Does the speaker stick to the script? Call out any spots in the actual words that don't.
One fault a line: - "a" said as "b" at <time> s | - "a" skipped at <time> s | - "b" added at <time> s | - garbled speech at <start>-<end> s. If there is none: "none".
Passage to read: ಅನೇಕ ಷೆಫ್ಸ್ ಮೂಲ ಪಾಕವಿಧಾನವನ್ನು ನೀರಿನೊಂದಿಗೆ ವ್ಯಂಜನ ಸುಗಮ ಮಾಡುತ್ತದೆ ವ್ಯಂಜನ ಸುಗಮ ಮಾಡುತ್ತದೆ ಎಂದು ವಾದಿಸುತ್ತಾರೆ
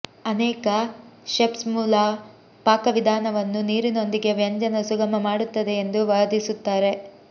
- "ವ್ಯಂಜನ ಸುಗಮ ಮಾಡುತ್ತದೆ" skipped at 5.8 s